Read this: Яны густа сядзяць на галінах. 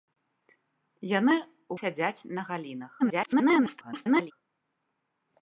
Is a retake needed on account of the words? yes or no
yes